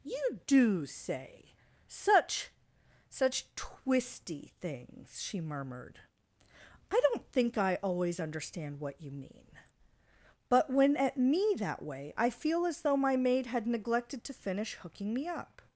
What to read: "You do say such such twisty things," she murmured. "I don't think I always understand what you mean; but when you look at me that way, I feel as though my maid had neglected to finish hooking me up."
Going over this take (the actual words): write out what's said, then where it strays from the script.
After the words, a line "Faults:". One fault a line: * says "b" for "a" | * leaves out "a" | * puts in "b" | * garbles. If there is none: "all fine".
"You do say such such twisty things," she murmured. "I don't think I always understand what you mean; but when at me that way, I feel as though my maid had neglected to finish hooking me up."
Faults:
* leaves out "you look"